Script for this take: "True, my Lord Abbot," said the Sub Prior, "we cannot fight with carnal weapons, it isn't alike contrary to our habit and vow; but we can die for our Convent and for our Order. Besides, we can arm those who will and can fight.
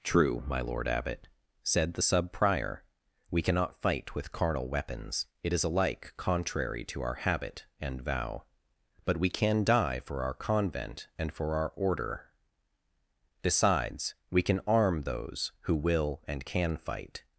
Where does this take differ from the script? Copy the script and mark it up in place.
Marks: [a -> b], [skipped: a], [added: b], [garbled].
"True, my Lord Abbot," said the Sub Prior, "we cannot fight with carnal weapons, it [isn't -> is] alike contrary to our habit and vow; but we can die for our Convent and for our Order. Besides, we can arm those who will and can fight.